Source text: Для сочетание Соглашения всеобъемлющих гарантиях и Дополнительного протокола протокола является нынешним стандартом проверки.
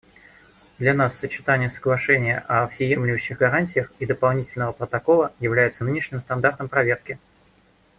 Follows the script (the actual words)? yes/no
no